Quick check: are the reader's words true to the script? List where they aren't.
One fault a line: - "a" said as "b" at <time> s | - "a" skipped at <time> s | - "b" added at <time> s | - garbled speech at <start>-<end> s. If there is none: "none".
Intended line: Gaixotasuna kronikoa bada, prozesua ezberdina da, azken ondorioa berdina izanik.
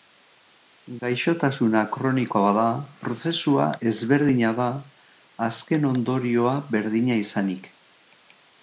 none